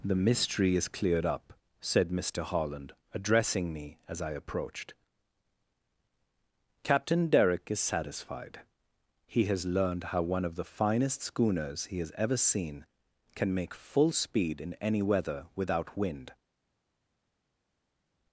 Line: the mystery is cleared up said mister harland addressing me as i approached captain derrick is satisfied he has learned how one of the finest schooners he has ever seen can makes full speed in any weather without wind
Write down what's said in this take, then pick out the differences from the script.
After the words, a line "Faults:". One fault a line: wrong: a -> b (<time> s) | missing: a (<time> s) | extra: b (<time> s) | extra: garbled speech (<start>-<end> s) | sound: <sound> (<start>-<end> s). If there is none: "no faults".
the mystery is cleared up said mister harland addressing me as i approached captain derrick is satisfied he has learned how one of the finest schooners he has ever seen can make full speed in any weather without wind
Faults:
wrong: makes -> make (13.5 s)